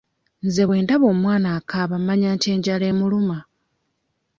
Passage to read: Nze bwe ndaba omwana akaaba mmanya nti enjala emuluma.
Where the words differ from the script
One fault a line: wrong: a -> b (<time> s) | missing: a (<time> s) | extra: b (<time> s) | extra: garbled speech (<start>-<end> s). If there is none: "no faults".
no faults